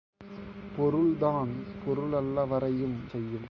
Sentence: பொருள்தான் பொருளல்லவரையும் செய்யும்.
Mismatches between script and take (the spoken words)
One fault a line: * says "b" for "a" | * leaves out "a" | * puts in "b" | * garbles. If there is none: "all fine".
all fine